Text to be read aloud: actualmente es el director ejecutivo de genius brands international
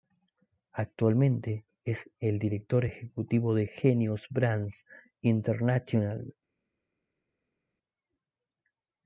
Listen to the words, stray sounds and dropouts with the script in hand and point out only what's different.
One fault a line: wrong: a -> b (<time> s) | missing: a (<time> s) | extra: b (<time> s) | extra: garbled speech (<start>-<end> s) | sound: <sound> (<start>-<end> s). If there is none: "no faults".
no faults